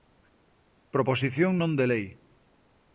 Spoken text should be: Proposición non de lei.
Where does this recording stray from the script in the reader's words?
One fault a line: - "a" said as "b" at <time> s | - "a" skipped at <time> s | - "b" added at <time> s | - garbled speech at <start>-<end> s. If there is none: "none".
none